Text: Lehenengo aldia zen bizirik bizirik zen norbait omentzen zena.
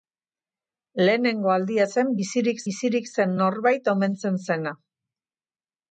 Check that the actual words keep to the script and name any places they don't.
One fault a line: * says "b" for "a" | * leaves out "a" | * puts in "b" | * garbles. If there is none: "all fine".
all fine